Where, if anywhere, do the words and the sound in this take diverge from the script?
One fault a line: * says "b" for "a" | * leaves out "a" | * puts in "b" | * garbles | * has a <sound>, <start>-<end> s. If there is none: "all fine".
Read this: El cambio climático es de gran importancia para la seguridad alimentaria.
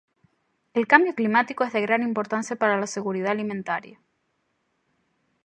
all fine